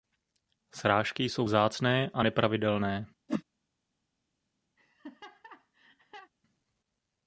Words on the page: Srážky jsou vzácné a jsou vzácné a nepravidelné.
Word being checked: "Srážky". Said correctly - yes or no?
yes